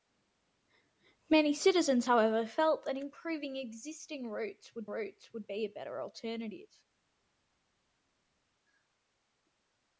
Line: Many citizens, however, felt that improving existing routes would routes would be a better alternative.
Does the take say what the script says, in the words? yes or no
yes